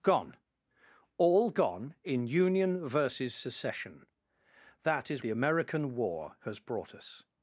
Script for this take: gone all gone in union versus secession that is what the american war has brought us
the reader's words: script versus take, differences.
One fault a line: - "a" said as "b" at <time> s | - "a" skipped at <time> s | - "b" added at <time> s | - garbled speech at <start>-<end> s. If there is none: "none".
- "what" skipped at 5.2 s